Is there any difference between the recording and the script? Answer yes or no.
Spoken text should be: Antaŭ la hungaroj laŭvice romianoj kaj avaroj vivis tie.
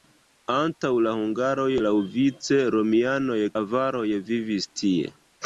yes